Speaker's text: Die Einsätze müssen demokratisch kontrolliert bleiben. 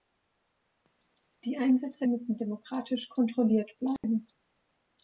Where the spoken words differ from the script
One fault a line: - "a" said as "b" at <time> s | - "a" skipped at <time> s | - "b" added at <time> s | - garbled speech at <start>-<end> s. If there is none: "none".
none